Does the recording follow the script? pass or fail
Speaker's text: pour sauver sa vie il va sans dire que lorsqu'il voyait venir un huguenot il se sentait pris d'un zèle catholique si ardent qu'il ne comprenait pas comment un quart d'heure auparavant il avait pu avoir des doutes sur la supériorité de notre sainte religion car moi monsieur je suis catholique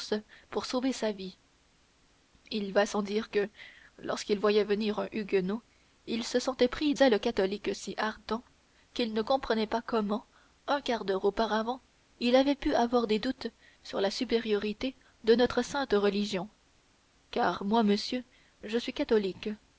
fail